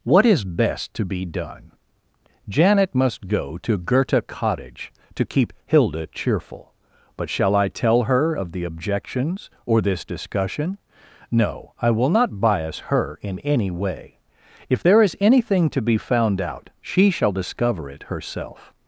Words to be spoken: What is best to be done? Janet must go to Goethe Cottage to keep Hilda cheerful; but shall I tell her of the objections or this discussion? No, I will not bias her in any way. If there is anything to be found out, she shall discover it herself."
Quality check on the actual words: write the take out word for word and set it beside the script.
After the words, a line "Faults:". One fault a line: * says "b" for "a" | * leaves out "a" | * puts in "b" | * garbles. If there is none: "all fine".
What is best to be done? Janet must go to Goethe Cottage to keep Hilda cheerful; but shall I tell her of the objections or this discussion? No, I will not bias her in any way. If there is anything to be found out, she shall discover it herself."
Faults:
all fine